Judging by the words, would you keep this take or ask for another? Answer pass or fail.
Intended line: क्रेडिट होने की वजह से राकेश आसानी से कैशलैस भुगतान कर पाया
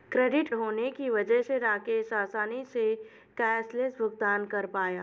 pass